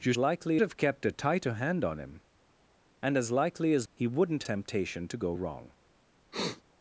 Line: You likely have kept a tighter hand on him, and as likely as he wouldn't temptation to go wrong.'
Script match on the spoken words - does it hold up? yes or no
yes